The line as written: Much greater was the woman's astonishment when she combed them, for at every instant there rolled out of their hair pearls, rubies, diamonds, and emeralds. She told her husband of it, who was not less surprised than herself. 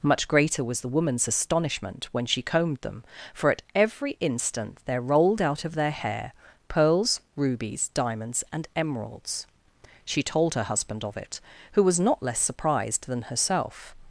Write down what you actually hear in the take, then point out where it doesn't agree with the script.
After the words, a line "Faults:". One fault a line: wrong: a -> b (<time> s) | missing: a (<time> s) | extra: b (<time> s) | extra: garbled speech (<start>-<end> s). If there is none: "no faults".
Much greater was the woman's astonishment when she combed them, for at every instant there rolled out of their hair pearls, rubies, diamonds, and emeralds. She told her husband of it, who was not less surprised than herself.
Faults:
no faults